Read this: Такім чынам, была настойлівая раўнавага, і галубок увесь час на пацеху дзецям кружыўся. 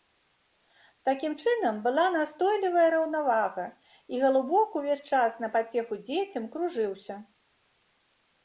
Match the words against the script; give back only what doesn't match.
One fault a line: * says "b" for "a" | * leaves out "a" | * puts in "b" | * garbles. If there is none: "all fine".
all fine